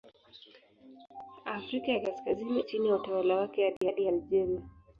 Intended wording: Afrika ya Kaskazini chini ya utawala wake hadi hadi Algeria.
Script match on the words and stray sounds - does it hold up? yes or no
no